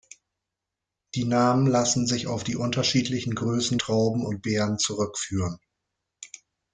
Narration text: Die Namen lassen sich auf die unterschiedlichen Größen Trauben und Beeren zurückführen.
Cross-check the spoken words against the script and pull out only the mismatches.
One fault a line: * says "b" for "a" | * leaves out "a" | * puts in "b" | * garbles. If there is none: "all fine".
all fine